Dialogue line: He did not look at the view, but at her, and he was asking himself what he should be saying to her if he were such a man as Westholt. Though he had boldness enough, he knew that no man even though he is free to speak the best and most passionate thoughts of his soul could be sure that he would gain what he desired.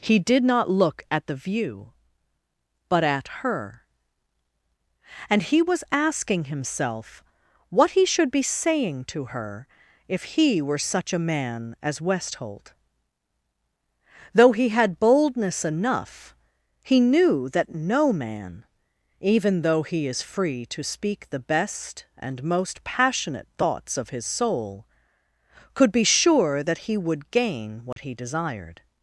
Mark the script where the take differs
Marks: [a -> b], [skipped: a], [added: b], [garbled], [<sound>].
He did not look at the view, but at her, and he was asking himself what he should be saying to her if he were such a man as Westholt. Though he had boldness enough, he knew that no man even though he is free to speak the best and most passionate thoughts of his soul could be sure that he would gain what [dropout] he desired.